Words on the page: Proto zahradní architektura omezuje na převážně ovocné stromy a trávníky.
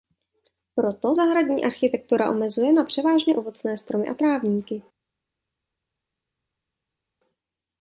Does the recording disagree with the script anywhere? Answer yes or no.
no